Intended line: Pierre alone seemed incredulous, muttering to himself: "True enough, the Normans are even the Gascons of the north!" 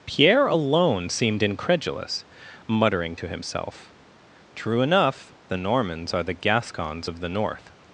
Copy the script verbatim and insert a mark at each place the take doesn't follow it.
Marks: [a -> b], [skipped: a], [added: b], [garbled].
Pierre alone seemed incredulous, muttering to himself: "True enough, the Normans are [skipped: even] the Gascons of the north!"